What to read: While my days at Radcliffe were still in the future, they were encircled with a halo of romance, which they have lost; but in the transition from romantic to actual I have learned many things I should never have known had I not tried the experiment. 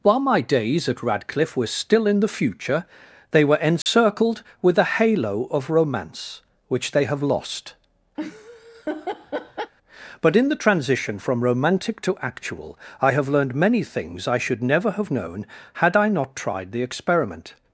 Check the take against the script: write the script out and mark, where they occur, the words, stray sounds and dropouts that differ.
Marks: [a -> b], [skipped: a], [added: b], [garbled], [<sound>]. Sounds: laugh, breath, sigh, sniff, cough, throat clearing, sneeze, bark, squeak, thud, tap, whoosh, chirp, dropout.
While my days at Radcliffe were still in the future, they were encircled [dropout] with a halo of romance, which they have lost; [laugh] but in the transition from romantic to actual I have learned many things I should never have known had I not tried the experiment.